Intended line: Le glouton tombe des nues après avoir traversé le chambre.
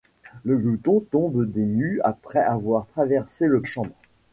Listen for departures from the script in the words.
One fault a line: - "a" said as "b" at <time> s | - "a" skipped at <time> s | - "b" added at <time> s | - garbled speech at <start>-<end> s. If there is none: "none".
none